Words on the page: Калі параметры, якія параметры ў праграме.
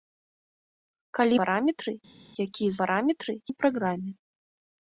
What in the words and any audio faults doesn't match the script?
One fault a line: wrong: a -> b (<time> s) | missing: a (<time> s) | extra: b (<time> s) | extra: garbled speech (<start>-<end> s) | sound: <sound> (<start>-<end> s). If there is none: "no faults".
no faults